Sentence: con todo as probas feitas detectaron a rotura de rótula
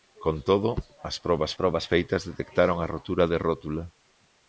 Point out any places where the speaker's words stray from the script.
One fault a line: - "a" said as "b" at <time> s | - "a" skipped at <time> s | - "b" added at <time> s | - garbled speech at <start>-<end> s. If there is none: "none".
- "probas" added at 1.6 s